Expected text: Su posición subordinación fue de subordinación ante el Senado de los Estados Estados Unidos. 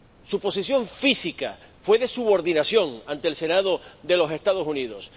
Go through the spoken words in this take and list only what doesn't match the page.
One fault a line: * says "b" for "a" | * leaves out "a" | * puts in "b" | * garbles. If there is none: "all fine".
* says "física" for "subordinación"
* leaves out "Estados"